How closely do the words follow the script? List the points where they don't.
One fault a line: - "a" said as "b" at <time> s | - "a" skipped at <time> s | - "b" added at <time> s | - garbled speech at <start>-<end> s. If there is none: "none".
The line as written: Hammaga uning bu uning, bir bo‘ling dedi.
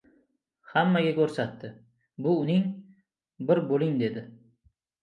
- "uning" said as "ko‘rsatdi" at 1.2 s